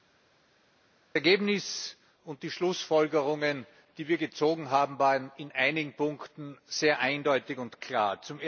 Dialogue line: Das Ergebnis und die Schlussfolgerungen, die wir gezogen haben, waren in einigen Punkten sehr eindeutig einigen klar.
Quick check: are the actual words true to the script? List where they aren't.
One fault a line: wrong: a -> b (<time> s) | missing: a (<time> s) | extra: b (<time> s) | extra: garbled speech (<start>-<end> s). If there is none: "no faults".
wrong: einigen -> und (7.6 s)